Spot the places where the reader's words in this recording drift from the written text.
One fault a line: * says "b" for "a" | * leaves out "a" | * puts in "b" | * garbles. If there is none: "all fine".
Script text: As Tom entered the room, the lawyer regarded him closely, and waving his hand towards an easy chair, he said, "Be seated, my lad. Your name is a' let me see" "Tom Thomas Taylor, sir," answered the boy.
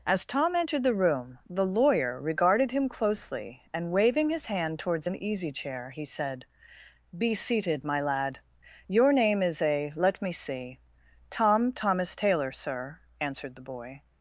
all fine